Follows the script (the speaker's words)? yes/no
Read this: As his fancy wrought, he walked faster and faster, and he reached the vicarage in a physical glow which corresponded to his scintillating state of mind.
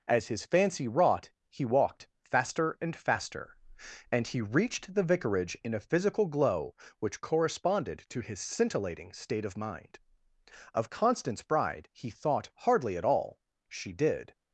no